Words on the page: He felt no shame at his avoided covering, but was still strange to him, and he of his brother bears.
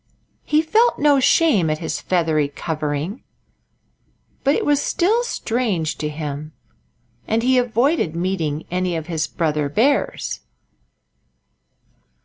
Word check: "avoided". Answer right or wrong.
wrong